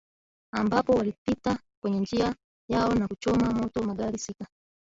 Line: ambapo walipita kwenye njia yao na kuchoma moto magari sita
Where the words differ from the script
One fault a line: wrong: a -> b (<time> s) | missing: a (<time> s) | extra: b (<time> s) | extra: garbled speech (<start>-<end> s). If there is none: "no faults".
no faults